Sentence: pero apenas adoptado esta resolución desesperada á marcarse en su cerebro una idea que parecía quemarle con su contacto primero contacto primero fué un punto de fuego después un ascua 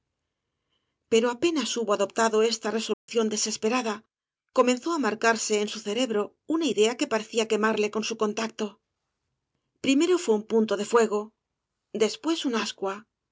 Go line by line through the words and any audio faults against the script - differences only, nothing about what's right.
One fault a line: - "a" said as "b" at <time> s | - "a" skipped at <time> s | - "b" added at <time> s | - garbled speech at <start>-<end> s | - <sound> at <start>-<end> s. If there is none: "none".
- "hubo" added at 1.8 s
- dropout at 2.9-3.1 s
- "comenzó" added at 4.6 s
- "contacto primero" skipped at 10.1 s